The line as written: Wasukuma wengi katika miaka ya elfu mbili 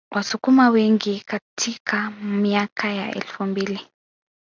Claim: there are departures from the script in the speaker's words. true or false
false